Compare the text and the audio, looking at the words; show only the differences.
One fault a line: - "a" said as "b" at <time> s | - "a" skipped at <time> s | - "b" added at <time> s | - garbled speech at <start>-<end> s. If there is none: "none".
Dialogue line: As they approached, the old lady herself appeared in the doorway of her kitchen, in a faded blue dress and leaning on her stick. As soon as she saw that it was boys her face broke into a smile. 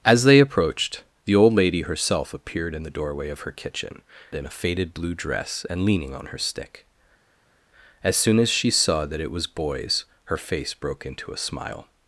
none